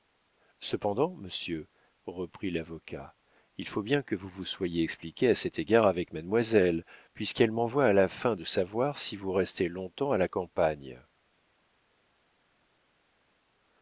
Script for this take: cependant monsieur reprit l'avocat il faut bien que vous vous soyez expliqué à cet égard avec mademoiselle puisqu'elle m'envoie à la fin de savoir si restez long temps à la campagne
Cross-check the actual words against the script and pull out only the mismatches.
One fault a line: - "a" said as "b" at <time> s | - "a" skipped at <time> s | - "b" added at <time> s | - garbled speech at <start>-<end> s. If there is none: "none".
- "vous" added at 9.2 s